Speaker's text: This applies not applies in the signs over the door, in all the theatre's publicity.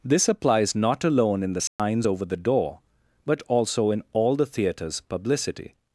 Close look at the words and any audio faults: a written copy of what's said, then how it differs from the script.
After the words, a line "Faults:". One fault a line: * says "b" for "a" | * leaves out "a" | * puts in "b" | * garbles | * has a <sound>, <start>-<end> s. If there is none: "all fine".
This applies not alone in the signs over the door, but also in all the theatre's publicity.
Faults:
* says "alone" for "applies"
* has a dropout, 1.7-1.8 s
* puts in "but also"